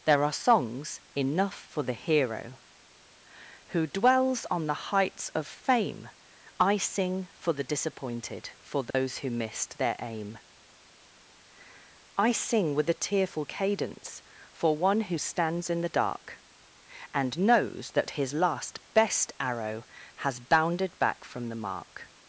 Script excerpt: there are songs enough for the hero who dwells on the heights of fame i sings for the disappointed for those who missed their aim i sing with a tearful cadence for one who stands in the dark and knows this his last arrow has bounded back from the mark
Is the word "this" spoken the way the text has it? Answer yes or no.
no